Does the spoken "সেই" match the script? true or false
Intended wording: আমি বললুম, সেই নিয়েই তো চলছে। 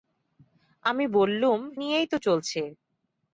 false